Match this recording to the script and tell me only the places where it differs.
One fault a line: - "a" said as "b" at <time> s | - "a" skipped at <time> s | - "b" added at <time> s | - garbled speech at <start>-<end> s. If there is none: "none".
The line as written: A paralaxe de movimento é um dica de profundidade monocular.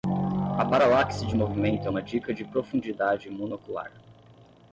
- "um" said as "uma" at 1.9 s